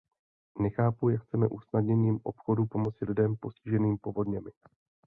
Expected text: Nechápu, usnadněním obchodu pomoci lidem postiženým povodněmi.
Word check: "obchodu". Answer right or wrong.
right